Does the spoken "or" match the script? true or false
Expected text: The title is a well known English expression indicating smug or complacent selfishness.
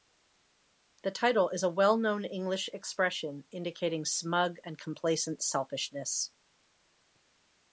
false